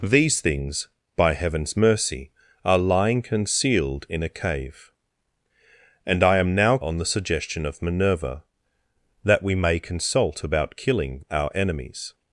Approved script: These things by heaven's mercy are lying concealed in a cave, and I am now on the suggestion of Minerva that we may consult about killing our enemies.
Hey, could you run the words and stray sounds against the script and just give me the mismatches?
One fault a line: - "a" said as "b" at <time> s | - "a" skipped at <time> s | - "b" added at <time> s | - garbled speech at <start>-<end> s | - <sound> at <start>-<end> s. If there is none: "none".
none